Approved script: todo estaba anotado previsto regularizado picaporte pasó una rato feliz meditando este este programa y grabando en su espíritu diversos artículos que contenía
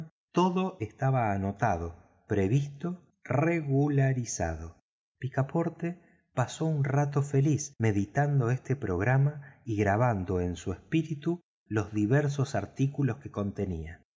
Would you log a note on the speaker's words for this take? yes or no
yes